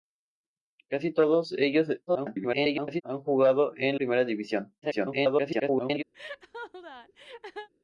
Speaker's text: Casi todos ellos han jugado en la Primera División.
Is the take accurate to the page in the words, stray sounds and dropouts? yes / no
no